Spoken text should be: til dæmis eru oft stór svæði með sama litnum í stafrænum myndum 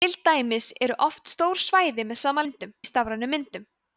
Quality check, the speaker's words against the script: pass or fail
fail